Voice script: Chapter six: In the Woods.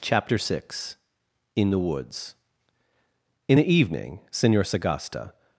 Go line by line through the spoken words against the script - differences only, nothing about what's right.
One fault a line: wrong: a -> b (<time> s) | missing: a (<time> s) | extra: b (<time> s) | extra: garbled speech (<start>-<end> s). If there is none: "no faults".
extra: In the evening Senor Sagasta (3.5 s)